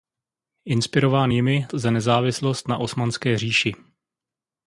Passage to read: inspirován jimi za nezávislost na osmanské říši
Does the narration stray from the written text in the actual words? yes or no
no